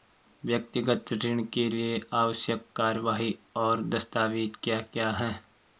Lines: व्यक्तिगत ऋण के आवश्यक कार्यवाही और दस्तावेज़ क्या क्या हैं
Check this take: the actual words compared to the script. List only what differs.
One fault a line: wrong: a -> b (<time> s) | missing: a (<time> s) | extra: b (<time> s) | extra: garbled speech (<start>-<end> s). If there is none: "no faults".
extra: लिए (1.7 s)